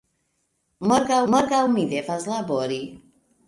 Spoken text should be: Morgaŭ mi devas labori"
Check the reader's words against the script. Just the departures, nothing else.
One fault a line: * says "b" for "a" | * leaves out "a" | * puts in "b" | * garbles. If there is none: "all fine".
* puts in "morgaŭ"